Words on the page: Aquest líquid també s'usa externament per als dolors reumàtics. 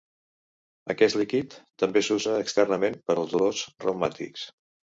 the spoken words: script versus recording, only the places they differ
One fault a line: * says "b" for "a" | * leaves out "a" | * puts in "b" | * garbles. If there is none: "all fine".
all fine